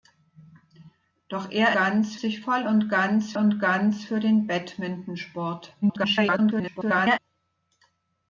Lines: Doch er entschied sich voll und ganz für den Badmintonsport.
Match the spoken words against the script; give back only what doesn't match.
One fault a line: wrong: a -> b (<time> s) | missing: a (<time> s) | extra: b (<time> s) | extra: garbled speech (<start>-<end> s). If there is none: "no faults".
wrong: entschied -> ganz (1.7 s)
extra: und ganz (3.4 s)
extra: garbled speech (5.8-7.2 s)